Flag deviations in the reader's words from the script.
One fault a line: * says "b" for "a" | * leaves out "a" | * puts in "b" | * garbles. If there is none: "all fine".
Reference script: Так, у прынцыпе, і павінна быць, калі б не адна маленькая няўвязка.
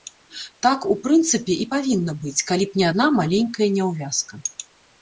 all fine